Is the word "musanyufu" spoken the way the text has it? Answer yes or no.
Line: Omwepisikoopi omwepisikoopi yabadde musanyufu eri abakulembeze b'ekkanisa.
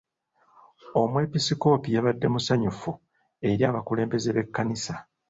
yes